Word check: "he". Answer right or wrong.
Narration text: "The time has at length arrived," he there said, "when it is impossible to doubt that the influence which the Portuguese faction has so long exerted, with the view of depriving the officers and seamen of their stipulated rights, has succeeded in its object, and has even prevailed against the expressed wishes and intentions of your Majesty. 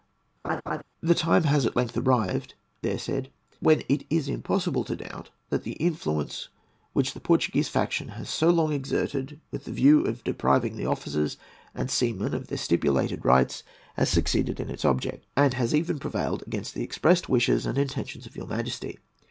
wrong